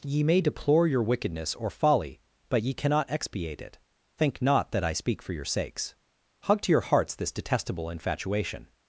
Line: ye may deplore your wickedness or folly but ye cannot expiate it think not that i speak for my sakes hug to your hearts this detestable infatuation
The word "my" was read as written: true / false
false